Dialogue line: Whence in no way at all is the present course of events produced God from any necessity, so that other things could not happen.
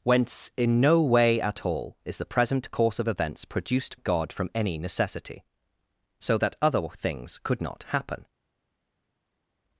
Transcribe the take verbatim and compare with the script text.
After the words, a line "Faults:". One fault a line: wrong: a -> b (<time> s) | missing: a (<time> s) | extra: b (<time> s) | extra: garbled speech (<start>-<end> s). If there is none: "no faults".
Whence in no way at all is the present course of events produced God from any necessity, so that other things could not happen.
Faults:
no faults